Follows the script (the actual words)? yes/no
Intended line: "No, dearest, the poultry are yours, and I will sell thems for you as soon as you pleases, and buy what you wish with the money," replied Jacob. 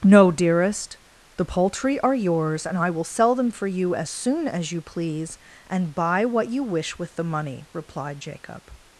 no